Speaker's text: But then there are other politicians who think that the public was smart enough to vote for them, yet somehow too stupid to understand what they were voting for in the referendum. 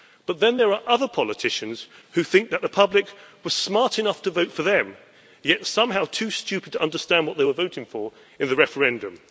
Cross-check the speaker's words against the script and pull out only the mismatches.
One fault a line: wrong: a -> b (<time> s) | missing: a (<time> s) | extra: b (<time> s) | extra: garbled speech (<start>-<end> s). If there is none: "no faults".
no faults